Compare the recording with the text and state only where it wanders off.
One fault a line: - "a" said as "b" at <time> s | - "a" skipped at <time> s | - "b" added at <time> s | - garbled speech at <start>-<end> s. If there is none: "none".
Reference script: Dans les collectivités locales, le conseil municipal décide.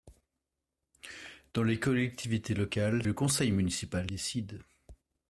none